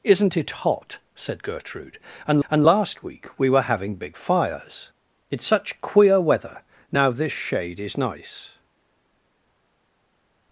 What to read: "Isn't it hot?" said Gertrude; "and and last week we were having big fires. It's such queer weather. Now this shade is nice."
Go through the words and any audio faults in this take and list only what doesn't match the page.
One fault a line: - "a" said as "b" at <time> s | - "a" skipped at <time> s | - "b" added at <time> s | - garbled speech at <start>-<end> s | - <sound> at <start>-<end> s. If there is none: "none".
none